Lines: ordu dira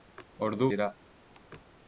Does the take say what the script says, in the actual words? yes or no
yes